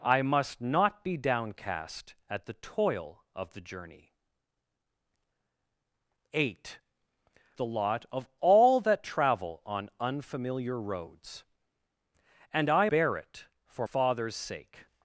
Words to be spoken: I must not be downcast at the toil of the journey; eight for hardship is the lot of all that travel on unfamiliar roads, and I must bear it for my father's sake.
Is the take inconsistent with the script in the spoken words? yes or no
yes